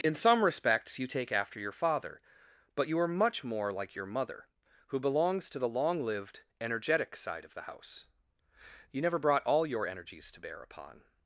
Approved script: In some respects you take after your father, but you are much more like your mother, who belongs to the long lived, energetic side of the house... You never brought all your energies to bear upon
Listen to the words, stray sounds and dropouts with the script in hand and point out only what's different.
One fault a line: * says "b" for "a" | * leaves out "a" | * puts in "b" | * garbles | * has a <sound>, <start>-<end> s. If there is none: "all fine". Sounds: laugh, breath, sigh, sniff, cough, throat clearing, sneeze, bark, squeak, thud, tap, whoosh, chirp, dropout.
all fine